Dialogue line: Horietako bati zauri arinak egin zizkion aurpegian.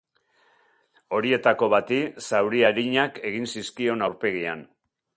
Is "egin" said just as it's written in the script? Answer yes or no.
yes